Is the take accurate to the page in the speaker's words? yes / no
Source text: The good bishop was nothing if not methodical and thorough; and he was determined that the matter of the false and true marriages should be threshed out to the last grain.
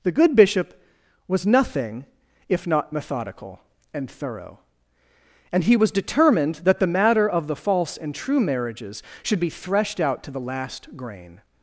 yes